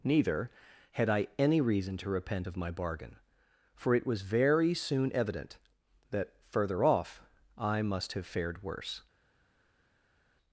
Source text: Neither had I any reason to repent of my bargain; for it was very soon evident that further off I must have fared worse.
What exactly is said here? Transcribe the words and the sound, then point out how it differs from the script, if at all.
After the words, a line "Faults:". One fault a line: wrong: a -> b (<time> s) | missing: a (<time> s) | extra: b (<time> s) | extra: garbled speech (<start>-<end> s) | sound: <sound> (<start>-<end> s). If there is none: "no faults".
Neither had I any reason to repent of my bargain; for it was very soon evident that further off I must have fared worse.
Faults:
no faults